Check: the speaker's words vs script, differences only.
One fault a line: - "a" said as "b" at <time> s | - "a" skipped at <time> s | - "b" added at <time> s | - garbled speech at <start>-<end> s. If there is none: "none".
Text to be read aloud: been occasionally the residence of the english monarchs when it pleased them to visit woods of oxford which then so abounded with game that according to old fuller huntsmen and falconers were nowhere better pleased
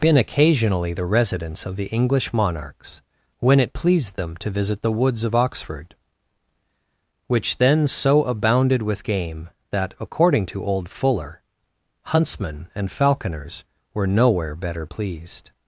- "the" added at 4.8 s